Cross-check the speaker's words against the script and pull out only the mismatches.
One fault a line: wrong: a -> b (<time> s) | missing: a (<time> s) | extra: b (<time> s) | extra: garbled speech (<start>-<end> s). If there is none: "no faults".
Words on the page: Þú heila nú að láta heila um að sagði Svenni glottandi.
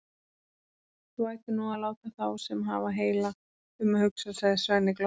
wrong: heila -> ættir (1.3 s)
extra: þá sem hafa (2.2 s)
extra: hugsa (4.1 s)